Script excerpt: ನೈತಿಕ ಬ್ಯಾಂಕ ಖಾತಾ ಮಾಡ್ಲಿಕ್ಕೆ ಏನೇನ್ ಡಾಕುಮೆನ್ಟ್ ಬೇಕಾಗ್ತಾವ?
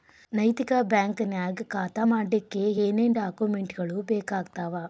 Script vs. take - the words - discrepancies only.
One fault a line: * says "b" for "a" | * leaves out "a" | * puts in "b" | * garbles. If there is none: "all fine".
* puts in "ನ್ಯಾಗ್"
* puts in "ಗಳು"